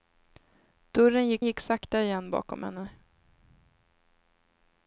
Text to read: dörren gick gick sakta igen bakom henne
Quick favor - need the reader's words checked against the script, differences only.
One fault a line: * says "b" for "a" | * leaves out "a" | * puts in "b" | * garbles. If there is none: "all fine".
all fine